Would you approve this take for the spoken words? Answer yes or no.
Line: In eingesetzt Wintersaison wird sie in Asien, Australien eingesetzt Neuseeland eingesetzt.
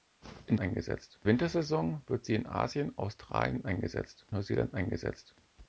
yes